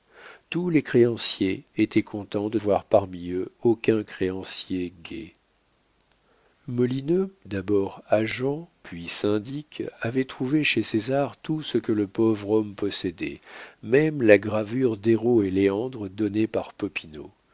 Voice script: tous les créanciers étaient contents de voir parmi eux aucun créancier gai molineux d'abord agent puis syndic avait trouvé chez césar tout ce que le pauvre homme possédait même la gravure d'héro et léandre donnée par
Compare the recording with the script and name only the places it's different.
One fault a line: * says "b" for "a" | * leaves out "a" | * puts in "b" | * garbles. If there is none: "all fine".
all fine